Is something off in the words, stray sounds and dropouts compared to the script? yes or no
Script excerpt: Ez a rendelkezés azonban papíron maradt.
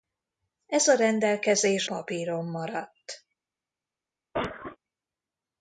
yes